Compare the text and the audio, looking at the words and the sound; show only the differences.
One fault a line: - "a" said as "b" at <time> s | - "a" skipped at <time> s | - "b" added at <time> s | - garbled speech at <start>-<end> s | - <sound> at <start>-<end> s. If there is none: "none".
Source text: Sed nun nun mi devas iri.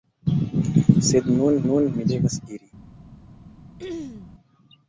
- throat clearing at 3.8-4.3 s